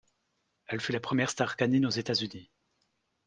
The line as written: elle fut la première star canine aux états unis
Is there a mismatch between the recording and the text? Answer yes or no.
no